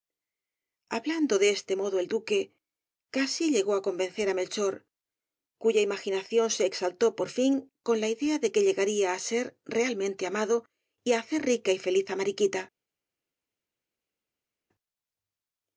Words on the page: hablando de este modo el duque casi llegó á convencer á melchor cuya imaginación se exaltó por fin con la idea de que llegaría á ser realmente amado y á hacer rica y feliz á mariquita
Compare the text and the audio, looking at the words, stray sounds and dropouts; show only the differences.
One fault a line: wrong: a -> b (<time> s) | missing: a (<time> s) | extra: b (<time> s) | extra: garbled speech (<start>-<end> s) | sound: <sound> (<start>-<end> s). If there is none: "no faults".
no faults